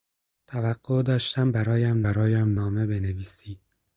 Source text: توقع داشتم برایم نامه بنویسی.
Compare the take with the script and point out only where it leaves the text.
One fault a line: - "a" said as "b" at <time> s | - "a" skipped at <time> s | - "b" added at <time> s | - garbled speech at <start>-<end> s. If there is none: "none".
- "برایم" added at 2.0 s